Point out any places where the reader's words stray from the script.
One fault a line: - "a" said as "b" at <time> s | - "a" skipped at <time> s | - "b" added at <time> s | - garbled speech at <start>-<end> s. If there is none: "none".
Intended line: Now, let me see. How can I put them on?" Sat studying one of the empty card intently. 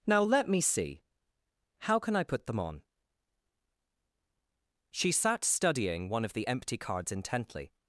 - "She" added at 4.9 s
- "card" said as "cards" at 6.8 s